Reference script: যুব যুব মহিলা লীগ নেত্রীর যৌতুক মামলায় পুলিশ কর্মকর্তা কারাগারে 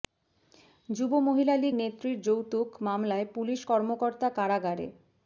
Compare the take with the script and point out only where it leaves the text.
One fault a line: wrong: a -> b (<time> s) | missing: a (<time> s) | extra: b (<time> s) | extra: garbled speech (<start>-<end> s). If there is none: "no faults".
missing: যুব (1.1 s)